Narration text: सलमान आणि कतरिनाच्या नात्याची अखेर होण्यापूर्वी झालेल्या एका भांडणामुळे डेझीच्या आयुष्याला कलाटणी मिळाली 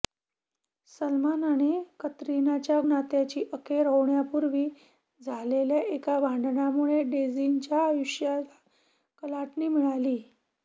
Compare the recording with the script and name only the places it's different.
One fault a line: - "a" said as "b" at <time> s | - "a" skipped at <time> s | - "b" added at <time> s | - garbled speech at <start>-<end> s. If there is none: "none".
none